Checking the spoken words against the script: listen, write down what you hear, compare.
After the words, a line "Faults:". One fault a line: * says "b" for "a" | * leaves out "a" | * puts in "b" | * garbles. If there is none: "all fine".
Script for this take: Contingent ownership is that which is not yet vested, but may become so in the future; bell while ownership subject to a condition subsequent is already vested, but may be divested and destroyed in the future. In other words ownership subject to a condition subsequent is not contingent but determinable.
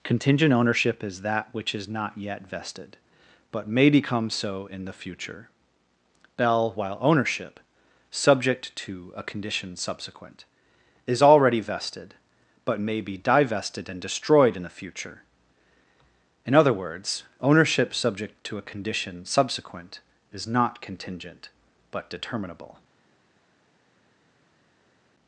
Contingent ownership is that which is not yet vested, but may become so in the future; bell while ownership subject to a condition subsequent is already vested, but may be divested and destroyed in the future. In other words ownership subject to a condition subsequent is not contingent but determinable.
Faults:
all fine